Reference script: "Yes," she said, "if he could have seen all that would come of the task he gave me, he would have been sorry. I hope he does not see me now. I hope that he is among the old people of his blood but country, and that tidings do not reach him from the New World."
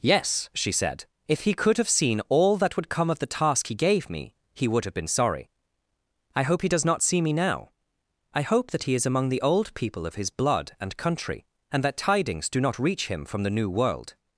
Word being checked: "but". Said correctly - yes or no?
no